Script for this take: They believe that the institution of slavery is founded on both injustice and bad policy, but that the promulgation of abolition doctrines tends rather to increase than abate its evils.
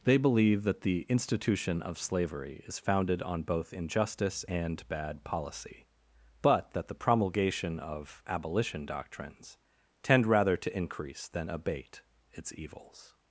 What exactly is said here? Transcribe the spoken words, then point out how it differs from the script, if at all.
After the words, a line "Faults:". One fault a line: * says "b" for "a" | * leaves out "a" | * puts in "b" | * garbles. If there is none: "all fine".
They believe that the institution of slavery is founded on both injustice and bad policy, but that the promulgation of abolition doctrines tend rather to increase than abate its evils.
Faults:
* says "tend" for "tends"